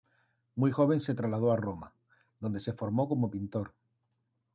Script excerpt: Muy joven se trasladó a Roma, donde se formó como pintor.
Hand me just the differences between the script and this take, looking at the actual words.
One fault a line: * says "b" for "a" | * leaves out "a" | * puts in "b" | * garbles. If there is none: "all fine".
all fine